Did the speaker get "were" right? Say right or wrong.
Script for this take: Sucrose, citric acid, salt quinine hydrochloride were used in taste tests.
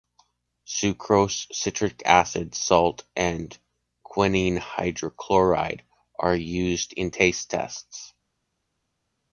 wrong